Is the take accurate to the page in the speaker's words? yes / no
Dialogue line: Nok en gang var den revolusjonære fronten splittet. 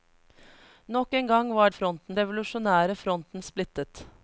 no